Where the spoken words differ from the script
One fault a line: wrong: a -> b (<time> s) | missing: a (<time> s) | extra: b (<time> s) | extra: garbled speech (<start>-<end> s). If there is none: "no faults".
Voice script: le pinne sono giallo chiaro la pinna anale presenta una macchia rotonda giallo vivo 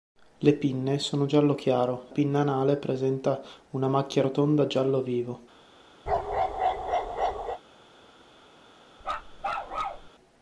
missing: la (2.1 s)